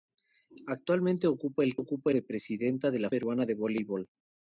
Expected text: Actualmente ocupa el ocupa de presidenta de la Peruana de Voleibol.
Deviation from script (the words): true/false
false